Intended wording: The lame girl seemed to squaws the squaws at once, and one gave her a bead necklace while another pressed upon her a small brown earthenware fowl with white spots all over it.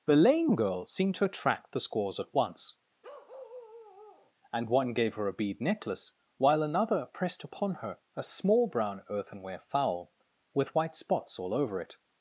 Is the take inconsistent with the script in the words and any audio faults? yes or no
yes